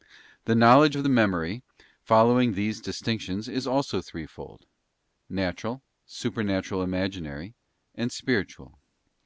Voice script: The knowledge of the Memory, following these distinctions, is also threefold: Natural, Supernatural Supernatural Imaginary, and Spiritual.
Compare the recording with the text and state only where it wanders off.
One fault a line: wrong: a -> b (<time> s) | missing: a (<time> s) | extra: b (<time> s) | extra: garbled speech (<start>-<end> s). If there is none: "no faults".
missing: Supernatural (6.8 s)